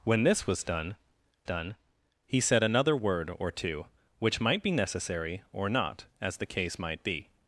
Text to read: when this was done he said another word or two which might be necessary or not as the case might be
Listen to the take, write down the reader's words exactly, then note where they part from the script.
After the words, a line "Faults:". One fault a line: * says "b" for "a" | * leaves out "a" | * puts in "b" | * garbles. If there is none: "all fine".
when this was done done he said another word or two which might be necessary or not as the case might be
Faults:
* puts in "done"